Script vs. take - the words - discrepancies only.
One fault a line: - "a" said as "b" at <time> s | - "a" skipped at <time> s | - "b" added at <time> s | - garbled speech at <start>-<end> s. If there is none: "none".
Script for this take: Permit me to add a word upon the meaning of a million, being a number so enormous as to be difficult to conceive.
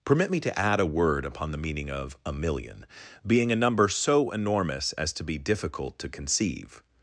none